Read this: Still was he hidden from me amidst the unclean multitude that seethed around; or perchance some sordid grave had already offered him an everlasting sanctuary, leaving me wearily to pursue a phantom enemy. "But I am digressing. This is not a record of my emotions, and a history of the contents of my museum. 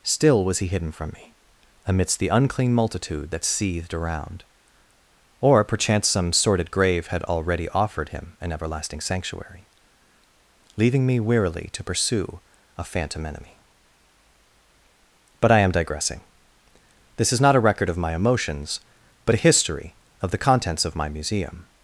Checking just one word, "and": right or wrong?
wrong